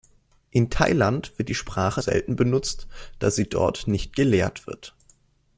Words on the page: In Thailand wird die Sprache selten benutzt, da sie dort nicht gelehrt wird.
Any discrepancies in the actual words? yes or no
no